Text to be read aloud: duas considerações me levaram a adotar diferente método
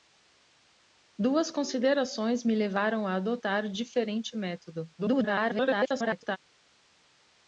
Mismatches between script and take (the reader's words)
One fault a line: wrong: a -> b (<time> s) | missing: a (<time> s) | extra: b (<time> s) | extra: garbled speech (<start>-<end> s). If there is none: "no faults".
extra: garbled speech (5.0-6.4 s)